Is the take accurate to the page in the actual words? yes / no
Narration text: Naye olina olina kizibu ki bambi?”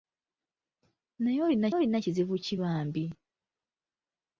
yes